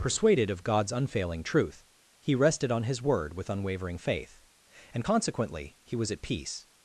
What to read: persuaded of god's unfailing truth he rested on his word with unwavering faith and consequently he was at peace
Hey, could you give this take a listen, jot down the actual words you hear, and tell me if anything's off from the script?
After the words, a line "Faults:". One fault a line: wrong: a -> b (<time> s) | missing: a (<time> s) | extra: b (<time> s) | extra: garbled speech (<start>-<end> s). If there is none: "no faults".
persuaded of god's unfailing truth he rested on his word with unwavering faith and consequently he was at peace
Faults:
no faults